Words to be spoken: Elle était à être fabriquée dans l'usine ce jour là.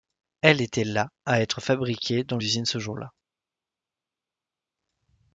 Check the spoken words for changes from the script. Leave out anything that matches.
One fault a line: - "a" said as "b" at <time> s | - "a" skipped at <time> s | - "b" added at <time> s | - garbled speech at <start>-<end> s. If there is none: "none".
- "la" added at 0.8 s